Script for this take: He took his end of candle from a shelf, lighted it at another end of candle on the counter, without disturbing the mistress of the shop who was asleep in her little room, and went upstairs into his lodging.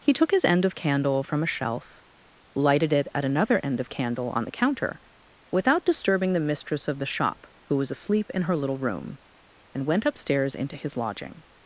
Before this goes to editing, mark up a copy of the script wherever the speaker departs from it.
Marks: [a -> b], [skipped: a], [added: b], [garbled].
He took his end of candle from a shelf, lighted it at another end of candle on the counter, without disturbing the mistress of the shop who was asleep in her little room, and went upstairs into his lodging.